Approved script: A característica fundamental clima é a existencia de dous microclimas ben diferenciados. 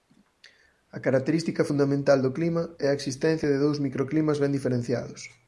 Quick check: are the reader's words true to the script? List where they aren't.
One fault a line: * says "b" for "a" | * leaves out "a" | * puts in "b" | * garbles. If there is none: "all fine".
* puts in "do"